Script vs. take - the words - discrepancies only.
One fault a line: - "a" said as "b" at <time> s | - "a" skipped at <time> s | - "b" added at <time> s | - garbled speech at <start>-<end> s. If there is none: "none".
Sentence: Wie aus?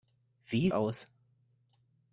none